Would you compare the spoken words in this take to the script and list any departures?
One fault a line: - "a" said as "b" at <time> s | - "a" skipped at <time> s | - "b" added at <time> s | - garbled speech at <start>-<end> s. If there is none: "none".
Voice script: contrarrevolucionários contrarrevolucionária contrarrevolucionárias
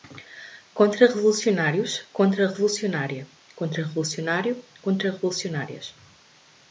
- "contrarrevolucionário" added at 3.5 s